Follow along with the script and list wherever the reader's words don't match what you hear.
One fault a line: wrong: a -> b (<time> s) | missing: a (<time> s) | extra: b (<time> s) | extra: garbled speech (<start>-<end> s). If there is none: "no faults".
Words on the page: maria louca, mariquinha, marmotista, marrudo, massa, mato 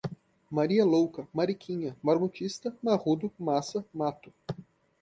no faults